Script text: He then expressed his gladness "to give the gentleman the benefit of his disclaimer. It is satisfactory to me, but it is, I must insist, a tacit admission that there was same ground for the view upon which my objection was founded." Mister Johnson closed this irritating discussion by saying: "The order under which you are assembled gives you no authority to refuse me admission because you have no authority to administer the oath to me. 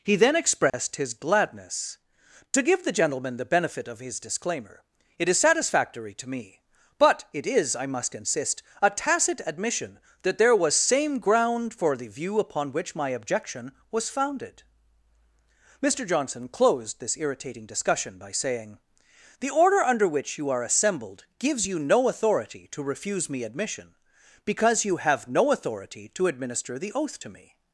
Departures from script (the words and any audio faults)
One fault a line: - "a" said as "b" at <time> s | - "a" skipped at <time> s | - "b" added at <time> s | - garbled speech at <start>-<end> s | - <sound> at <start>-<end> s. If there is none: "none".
- dropout at 0.7-0.7 s